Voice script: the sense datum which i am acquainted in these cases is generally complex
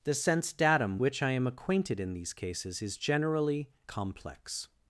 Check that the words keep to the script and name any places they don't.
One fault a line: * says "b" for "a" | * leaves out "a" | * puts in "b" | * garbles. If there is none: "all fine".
all fine